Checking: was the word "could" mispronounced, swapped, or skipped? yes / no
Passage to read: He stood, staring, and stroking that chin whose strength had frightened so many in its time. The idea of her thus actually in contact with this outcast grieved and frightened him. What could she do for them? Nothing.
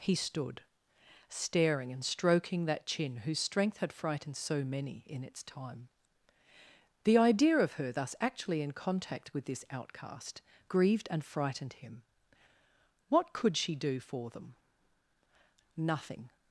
no